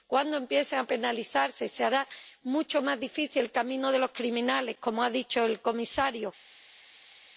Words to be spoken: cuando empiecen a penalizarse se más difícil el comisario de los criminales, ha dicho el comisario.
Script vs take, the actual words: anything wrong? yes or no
yes